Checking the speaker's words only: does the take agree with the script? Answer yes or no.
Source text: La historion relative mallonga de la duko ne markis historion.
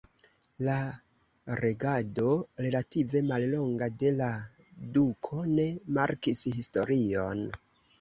no